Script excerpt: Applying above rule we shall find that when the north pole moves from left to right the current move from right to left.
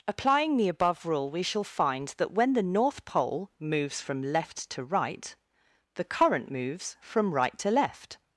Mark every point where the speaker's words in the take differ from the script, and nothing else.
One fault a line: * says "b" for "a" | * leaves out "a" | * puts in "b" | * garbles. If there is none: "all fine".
* puts in "the"
* says "moves" for "move"